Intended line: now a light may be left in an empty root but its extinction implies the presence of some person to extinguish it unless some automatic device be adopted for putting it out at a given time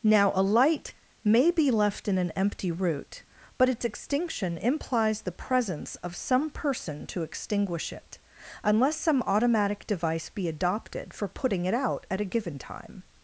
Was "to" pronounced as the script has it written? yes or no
yes